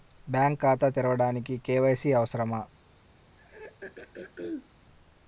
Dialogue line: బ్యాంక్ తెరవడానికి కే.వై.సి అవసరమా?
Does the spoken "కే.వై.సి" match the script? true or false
true